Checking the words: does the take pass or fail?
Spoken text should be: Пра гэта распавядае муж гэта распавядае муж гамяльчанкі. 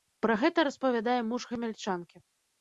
fail